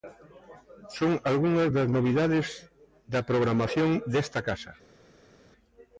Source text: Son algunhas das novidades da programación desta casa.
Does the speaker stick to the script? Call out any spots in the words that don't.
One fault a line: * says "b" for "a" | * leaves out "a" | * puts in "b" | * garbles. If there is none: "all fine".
all fine